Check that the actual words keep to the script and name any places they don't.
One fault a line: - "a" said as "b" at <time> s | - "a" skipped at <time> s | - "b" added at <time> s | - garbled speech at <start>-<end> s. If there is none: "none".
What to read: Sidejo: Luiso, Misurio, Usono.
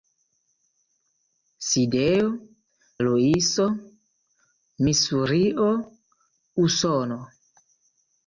none